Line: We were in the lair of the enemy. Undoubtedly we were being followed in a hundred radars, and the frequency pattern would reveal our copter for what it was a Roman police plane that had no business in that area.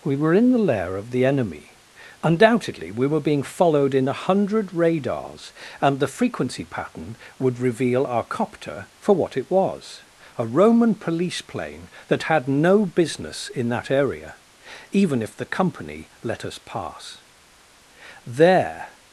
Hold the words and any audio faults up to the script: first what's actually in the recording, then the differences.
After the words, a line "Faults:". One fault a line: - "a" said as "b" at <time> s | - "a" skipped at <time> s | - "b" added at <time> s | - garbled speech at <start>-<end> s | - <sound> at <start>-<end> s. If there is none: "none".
We were in the lair of the enemy. Undoubtedly we were being followed in a hundred radars, and the frequency pattern would reveal our copter for what it was a Roman police plane that had no business in that area. Even if the Company let us pass, there
Faults:
- "Even if the Company let us pass there" added at 14.9 s